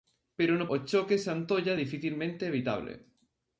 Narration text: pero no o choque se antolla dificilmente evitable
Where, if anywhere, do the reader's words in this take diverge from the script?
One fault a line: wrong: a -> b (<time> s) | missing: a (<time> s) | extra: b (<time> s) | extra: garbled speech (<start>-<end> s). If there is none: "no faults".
no faults